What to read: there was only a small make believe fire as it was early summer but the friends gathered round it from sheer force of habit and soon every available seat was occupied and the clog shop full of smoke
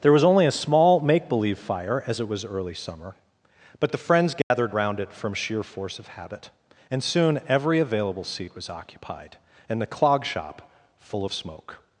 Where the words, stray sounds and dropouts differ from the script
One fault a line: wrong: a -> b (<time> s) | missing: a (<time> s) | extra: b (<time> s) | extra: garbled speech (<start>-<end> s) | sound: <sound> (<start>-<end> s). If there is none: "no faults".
sound: dropout (4.4-4.5 s)